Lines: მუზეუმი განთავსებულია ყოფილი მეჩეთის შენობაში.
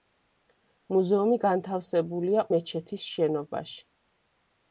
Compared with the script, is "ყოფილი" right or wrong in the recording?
wrong